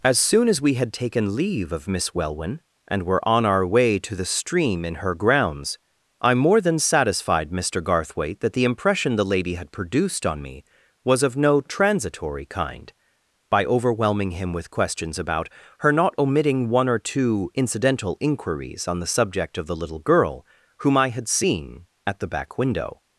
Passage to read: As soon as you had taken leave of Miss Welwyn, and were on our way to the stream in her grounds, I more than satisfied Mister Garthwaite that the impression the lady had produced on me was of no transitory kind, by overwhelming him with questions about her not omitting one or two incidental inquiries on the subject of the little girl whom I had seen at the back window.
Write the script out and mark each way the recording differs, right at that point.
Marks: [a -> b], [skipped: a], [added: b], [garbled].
As soon as [you -> we] had taken leave of Miss Welwyn, and were on our way to the stream in her grounds, I more than satisfied Mister Garthwaite that the impression the lady had produced on me was of no transitory kind, by overwhelming him with questions about her not omitting one or two incidental inquiries on the subject of the little girl whom I had seen at the back window.